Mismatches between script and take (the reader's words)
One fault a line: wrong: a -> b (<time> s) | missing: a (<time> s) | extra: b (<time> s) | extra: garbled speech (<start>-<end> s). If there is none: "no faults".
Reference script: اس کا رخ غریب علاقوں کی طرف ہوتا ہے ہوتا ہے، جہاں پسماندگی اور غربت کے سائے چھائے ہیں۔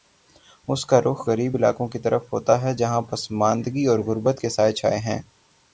missing: ہوتا ہے (2.7 s)